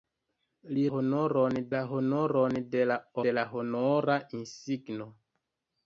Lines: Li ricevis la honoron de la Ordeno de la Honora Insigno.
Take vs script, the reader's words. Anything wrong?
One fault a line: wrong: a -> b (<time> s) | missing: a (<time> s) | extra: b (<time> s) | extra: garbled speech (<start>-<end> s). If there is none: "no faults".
wrong: ricevis -> honoron (1.0 s)
missing: Ordeno (3.0 s)